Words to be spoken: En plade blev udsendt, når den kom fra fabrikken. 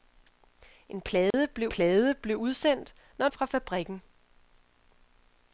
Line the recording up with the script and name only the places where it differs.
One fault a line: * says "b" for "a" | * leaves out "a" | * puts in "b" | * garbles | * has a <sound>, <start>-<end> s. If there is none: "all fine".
* has a dropout, 1.3-1.3 s
* puts in "plade blev"
* leaves out "den kom"